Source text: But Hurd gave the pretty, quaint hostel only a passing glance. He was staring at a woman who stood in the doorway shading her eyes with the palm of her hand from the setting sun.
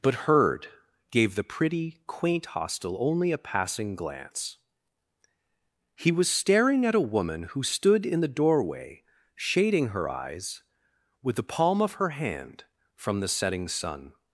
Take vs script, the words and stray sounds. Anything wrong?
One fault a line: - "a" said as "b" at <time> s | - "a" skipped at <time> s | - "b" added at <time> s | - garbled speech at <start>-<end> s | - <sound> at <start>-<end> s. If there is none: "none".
none